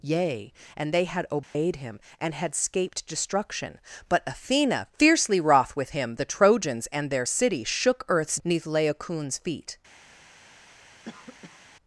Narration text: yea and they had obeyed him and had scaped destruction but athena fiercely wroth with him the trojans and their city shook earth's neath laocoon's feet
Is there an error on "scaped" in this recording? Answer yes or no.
no